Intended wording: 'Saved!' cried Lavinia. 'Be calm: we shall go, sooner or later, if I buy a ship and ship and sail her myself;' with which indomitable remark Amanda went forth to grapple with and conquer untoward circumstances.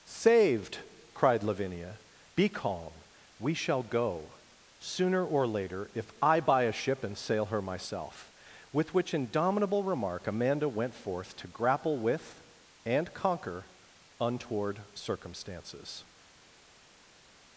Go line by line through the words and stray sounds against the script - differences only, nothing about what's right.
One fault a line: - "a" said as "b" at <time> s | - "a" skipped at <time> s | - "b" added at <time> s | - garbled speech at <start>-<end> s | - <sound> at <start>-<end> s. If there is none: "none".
- "ship and" skipped at 7.2 s